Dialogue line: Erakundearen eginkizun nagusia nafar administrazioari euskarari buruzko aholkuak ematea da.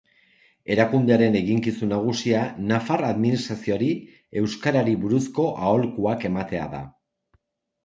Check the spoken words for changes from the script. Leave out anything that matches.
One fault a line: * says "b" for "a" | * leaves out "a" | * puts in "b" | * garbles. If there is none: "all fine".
all fine